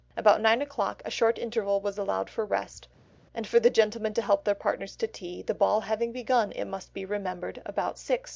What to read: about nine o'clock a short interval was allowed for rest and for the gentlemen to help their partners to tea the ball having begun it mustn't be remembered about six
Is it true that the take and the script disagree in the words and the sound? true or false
true